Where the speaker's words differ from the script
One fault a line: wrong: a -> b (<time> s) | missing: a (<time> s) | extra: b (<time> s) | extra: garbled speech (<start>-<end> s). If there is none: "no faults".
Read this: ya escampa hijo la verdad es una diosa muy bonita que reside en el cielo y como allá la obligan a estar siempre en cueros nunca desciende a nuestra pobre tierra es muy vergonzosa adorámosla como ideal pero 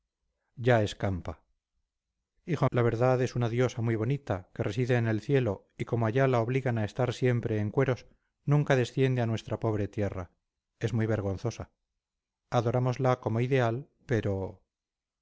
no faults